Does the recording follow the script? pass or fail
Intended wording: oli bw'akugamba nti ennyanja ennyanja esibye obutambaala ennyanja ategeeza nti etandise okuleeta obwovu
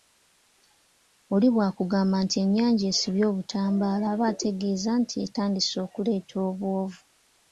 fail